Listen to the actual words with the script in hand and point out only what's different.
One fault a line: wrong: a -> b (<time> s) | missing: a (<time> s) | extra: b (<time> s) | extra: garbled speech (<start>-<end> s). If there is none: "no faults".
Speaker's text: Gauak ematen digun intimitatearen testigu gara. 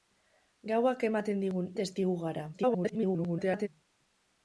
missing: intimitatearen (1.7 s)
extra: garbled speech (2.5-3.7 s)